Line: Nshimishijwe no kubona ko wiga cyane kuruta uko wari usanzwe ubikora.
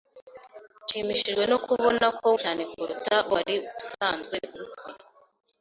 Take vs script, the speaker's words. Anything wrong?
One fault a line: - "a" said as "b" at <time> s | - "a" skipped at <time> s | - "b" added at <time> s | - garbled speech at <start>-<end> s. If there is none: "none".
- "wiga" skipped at 2.3 s
- "uko" skipped at 3.1 s